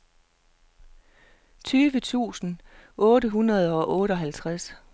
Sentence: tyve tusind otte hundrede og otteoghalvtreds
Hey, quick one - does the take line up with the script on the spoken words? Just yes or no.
yes